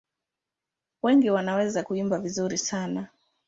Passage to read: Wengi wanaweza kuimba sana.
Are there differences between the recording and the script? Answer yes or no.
yes